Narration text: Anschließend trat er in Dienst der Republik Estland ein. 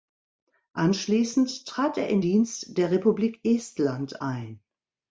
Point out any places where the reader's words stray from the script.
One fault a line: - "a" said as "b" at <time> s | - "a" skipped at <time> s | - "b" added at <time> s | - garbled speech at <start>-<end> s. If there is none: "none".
none